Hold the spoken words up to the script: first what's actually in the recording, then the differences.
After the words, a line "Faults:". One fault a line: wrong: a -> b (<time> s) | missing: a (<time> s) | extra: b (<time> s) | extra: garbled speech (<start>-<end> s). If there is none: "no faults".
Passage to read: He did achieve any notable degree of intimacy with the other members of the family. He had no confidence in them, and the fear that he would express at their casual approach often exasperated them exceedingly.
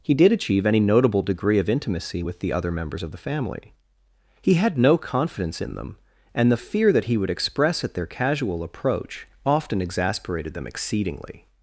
He did achieve any notable degree of intimacy with the other members of the family. He had no confidence in them, and the fear that he would express at their casual approach often exasperated them exceedingly.
Faults:
no faults